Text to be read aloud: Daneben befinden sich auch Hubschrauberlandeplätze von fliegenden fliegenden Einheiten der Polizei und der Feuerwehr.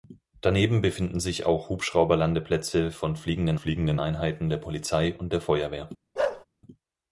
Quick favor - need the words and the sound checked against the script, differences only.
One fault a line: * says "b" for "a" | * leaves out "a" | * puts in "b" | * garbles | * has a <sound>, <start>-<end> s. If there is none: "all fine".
* has a bark, 6.2-6.5 s